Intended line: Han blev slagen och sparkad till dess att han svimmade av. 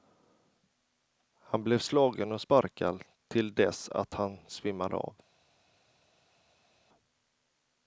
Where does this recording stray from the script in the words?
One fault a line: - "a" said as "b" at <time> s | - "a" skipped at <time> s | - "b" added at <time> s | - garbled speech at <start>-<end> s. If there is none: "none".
none